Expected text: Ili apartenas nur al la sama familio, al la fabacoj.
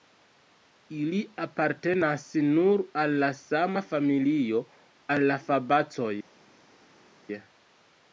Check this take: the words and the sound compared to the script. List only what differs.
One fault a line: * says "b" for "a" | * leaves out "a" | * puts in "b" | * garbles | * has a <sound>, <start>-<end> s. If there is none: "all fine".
all fine